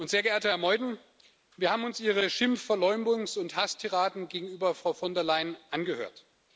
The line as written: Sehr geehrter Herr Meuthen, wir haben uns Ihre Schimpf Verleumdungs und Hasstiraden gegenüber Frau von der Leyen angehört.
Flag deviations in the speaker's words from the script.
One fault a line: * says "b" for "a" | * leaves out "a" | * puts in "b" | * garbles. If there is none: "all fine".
all fine